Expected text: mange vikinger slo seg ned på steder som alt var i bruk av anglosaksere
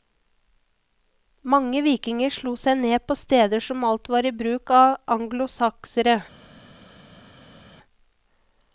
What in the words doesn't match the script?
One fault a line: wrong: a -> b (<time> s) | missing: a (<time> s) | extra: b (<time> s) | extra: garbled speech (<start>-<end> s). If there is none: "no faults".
no faults